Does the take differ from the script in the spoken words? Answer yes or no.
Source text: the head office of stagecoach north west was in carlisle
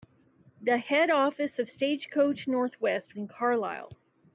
yes